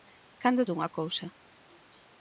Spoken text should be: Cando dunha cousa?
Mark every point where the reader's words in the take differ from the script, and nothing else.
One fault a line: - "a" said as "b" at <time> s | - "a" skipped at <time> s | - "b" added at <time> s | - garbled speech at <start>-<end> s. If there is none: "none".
none